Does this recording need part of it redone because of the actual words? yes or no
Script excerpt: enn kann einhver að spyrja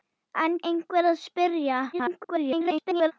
yes